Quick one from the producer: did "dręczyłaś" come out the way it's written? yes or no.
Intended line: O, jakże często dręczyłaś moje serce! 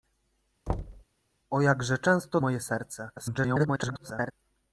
no